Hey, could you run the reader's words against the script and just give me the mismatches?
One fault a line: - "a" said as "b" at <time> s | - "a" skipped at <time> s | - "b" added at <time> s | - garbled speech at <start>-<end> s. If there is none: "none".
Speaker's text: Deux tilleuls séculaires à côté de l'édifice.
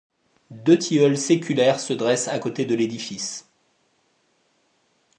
- "se dressent" added at 1.8 s